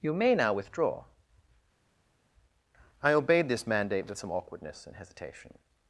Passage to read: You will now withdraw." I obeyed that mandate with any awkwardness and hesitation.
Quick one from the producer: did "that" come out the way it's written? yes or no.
no